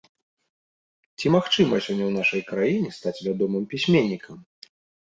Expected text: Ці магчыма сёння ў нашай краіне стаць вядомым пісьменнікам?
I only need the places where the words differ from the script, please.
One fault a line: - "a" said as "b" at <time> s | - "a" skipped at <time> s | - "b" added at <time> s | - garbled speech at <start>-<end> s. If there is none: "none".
none